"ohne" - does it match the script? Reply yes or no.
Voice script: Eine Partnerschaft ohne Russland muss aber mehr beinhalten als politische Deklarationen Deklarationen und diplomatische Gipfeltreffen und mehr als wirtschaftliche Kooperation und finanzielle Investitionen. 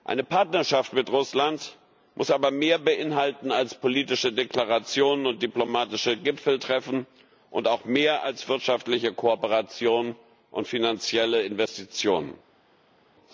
no